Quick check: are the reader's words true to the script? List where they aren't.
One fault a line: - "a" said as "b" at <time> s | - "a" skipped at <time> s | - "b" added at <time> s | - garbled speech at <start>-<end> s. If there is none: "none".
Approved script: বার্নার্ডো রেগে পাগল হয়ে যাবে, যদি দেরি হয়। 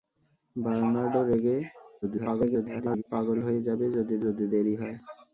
- garbled speech at 2.0-3.0 s
- "যদি" added at 4.2 s